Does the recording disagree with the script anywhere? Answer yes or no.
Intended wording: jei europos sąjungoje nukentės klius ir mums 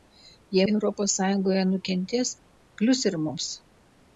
no